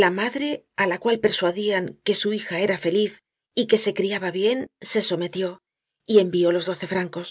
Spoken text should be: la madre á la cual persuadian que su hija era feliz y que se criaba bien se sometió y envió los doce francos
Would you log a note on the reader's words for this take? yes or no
no